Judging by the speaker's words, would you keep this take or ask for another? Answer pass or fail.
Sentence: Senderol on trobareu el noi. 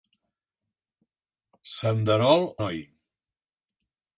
fail